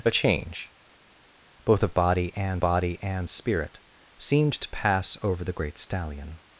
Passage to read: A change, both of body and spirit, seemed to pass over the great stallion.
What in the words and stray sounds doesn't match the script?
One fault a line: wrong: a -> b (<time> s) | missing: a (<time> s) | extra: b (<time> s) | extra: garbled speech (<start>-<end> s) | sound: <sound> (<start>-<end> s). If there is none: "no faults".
extra: body and (2.6 s)